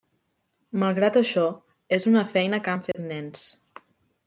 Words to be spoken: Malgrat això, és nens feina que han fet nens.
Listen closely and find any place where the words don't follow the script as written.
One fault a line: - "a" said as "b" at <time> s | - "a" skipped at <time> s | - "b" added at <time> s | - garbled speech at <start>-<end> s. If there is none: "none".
- "nens" said as "una" at 2.1 s